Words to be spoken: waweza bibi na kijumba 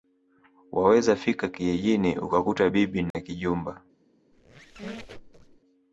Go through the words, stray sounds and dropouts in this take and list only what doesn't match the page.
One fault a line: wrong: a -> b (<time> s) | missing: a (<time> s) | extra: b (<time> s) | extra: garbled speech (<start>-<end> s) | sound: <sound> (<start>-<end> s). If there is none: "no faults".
extra: fika kijijini ukakuta (1.1 s)
sound: dropout (3.1-3.1 s)
sound: squeak (4.3-5.6 s)